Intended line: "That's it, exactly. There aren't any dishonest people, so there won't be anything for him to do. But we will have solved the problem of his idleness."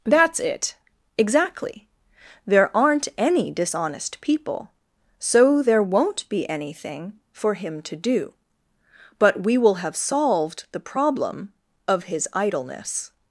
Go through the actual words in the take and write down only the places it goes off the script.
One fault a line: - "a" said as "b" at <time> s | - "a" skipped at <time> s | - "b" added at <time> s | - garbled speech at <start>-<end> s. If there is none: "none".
none